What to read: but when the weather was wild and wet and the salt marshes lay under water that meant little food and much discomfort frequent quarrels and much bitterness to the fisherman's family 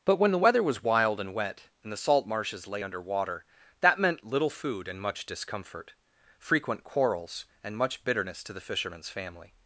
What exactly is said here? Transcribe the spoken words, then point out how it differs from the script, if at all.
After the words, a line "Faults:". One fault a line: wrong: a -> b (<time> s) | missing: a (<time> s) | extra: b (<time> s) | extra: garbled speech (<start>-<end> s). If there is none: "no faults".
but when the weather was wild and wet and the salt marshes lay under water that meant little food and much discomfort frequent quarrels and much bitterness to the fisherman's family
Faults:
no faults